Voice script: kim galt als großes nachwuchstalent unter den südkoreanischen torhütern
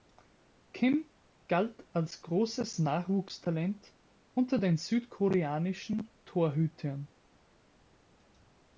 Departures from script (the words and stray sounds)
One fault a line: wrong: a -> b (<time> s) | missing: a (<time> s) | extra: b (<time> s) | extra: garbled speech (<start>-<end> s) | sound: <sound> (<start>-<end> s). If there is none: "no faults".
no faults